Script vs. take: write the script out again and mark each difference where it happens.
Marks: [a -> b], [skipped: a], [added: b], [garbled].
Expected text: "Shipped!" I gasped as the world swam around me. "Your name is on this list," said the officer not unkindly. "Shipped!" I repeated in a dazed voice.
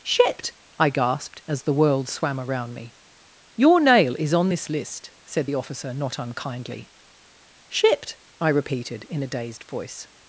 "Shipped!" I gasped as the world swam around me. "Your [name -> nail] is on this list," said the officer not unkindly. "Shipped!" I repeated in a dazed voice.